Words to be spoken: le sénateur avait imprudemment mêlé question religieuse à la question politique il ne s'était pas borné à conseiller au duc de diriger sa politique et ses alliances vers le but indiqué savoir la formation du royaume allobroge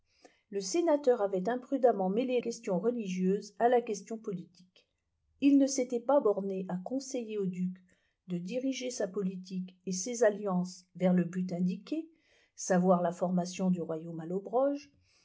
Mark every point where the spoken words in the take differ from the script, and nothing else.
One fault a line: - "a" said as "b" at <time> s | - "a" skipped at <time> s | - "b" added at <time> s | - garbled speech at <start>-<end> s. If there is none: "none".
none